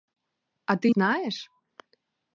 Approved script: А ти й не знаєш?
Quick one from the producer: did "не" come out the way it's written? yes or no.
no